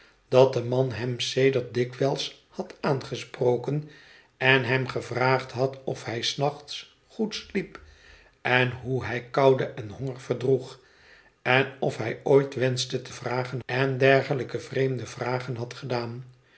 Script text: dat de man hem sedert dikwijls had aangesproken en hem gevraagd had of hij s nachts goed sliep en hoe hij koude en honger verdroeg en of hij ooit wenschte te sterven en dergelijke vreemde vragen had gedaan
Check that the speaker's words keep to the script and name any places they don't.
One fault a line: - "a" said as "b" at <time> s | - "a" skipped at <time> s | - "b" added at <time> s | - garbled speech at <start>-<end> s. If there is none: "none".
- "sterven" said as "vragen" at 13.1 s